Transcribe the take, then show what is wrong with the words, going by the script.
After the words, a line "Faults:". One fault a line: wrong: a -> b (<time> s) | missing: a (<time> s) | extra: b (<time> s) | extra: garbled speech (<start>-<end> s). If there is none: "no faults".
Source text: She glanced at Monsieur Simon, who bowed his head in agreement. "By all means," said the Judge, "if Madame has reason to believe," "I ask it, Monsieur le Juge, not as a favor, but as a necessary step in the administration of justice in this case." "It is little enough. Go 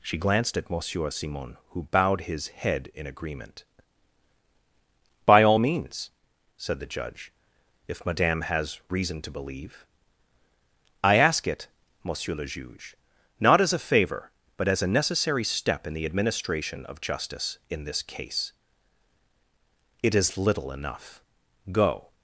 She glanced at Monsieur Simon, who bowed his head in agreement. "By all means," said the Judge, "if Madame has reason to believe," "I ask it, Monsieur le Juge, not as a favor, but as a necessary step in the administration of justice in this case." "It is little enough. Go
Faults:
no faults